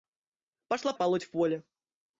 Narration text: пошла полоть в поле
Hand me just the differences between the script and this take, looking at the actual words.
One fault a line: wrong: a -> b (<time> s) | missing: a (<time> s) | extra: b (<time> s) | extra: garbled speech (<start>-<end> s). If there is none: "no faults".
no faults